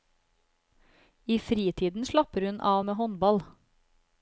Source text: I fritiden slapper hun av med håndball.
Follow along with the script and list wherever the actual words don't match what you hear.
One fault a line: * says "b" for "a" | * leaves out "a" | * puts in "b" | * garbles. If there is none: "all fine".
all fine